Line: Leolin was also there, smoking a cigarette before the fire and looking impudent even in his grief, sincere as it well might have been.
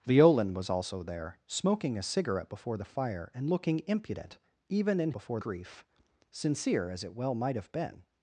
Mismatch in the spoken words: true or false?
true